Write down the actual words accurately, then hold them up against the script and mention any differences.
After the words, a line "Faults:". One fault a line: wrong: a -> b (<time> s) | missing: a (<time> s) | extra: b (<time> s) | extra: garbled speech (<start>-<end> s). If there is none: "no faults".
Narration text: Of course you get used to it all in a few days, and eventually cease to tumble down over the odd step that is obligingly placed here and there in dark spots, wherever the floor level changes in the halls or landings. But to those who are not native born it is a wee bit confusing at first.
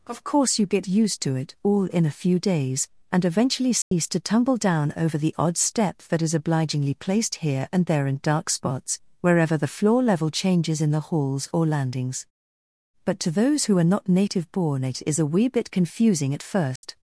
Of course you get used to it all in a few days, and eventually cease to tumble down over the odd step that is obligingly placed here and there in dark spots, wherever the floor level changes in the halls or landings. But to those who are not native born it is a wee bit confusing at first.
Faults:
no faults